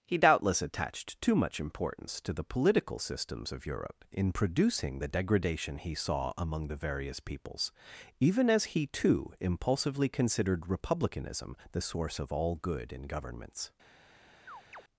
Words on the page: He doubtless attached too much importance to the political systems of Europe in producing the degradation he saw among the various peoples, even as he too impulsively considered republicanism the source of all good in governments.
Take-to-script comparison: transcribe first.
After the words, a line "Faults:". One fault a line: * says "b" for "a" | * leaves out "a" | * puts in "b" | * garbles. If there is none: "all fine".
He doubtless attached too much importance to the political systems of Europe in producing the degradation he saw among the various peoples, even as he too impulsively considered republicanism the source of all good in governments.
Faults:
all fine